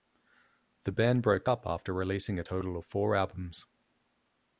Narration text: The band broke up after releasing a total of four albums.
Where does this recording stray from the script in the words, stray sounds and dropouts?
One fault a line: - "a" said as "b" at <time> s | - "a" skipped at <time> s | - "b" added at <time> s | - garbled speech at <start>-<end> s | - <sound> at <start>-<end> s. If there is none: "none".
none